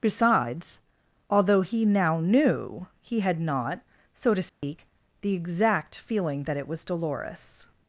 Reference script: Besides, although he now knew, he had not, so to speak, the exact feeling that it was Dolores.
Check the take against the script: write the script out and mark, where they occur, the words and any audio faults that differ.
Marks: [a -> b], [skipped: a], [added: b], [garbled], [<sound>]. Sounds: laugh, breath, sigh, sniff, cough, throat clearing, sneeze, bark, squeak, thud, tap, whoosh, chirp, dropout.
Besides, although he now knew, he had not, so to speak, [dropout] the exact feeling that it was Dolores.